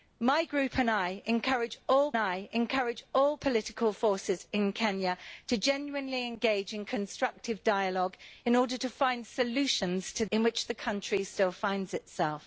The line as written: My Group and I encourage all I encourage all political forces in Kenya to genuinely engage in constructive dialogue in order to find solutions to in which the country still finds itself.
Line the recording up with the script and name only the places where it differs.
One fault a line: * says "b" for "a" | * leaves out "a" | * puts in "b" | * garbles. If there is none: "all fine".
all fine